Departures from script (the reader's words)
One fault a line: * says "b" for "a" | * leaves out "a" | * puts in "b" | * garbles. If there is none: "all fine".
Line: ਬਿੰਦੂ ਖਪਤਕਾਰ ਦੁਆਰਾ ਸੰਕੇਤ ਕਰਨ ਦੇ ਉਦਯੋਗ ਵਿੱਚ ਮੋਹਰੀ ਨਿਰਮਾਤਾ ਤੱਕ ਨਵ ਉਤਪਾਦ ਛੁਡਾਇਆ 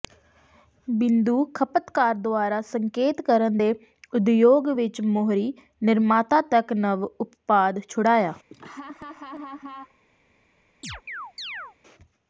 all fine